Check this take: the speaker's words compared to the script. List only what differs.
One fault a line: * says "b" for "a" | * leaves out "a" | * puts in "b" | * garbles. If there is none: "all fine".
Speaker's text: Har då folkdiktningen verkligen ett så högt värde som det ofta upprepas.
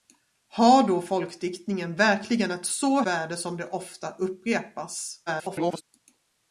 * leaves out "högt"
* garbles